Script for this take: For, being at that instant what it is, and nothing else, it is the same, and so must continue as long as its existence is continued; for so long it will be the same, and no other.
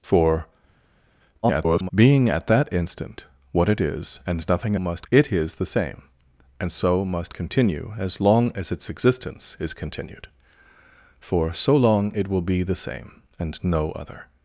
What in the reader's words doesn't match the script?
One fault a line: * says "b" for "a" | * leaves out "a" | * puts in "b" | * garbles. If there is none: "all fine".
* garbles
* says "must" for "else"